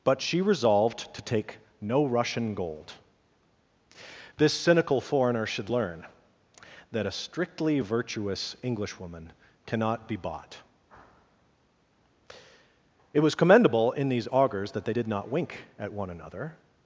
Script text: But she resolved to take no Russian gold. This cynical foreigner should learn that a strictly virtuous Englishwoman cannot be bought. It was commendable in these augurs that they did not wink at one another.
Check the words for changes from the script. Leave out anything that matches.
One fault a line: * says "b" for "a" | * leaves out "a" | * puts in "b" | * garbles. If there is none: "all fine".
all fine